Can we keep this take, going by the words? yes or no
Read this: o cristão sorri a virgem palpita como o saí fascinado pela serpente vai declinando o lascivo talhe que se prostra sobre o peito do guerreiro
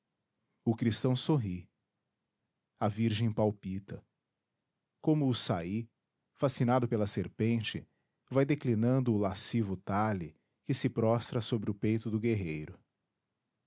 yes